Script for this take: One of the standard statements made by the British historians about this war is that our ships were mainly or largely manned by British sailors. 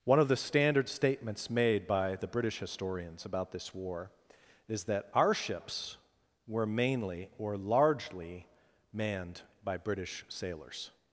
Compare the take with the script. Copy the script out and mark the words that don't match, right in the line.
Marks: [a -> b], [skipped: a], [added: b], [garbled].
One of the standard statements made by the British historians about this war is that our ships were mainly or largely manned by British sailors.